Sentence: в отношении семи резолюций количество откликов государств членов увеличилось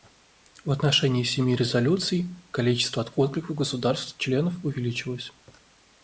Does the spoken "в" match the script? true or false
true